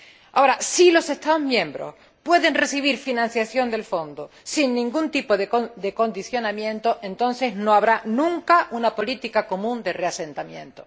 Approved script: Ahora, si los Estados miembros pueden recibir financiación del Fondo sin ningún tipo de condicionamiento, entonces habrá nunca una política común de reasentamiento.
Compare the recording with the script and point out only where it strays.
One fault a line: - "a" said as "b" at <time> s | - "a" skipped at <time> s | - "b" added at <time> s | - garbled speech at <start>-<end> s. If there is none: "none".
- "no" added at 7.5 s